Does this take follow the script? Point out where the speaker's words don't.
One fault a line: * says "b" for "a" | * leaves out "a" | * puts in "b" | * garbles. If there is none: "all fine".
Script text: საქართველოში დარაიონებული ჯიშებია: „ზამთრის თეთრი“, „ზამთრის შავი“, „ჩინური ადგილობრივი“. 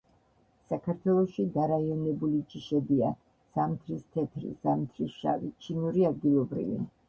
all fine